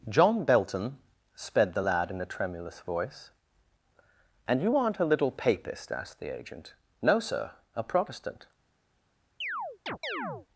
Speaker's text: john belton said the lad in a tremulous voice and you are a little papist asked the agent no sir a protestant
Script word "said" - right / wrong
wrong